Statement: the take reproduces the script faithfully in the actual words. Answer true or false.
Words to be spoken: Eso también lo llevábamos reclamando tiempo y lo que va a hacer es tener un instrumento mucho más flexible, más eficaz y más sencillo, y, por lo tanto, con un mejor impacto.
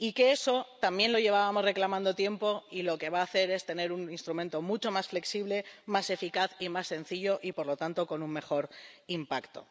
true